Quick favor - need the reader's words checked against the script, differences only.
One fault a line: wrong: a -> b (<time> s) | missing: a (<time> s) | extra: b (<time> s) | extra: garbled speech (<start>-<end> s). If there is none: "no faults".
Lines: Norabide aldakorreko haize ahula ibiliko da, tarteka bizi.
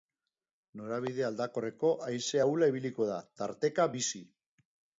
no faults